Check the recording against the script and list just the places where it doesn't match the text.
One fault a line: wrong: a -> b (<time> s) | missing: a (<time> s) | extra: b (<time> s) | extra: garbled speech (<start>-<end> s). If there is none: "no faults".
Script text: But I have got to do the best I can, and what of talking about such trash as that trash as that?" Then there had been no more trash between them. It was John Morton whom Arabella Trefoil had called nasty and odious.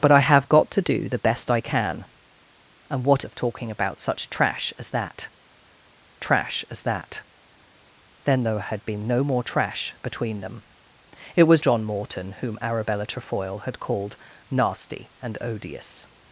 no faults